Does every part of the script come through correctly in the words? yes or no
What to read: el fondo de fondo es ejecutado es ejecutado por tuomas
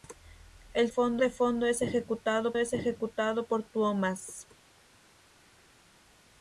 yes